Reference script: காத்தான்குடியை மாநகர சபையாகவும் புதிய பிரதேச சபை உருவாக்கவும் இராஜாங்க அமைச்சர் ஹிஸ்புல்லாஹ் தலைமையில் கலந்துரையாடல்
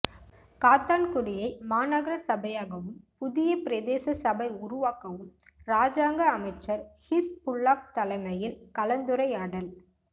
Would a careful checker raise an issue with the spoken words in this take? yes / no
no